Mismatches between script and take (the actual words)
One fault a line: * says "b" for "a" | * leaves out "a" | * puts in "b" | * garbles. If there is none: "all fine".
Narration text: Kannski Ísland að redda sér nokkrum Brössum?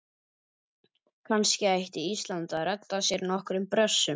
* puts in "ætti"